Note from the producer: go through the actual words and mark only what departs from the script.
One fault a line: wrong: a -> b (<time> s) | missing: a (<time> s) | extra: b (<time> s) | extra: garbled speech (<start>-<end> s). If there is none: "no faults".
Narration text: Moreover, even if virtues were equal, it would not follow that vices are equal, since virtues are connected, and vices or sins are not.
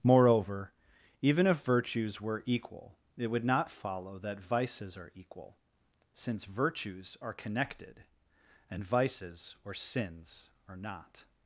no faults